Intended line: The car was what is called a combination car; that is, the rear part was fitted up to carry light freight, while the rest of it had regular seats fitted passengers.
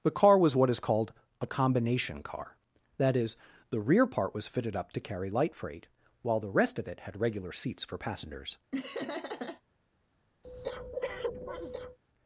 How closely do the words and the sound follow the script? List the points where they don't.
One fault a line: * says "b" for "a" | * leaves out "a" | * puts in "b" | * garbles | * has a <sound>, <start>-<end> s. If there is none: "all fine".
* says "for" for "fitted"
* has a laugh, 8.7-9.6 s
* has a breath, 10.4-12.0 s